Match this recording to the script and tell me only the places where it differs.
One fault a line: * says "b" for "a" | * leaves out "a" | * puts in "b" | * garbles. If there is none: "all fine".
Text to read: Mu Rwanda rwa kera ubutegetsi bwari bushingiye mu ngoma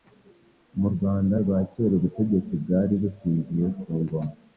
* says "ku" for "mu"